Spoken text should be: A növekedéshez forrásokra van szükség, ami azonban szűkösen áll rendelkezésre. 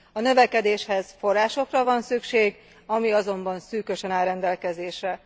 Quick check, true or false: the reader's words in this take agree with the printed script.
true